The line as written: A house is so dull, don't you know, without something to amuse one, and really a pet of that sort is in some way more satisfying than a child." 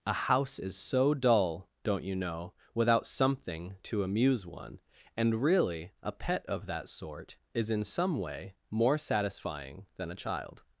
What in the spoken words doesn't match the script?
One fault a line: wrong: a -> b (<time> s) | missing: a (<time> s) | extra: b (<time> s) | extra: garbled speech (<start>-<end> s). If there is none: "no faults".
no faults